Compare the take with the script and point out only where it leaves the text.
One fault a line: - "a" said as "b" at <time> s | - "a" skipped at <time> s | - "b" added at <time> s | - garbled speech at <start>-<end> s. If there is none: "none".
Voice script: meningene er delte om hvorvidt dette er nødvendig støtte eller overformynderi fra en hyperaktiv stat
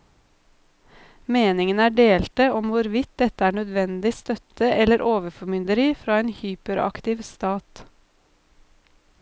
none